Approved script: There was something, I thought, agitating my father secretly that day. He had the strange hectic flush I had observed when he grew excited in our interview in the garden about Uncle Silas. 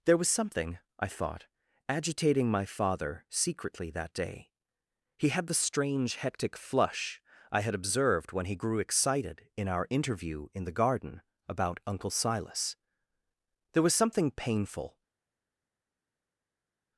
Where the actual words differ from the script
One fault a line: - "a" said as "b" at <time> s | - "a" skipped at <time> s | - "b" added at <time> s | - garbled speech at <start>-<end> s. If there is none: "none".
- "There was something painful" added at 13.7 s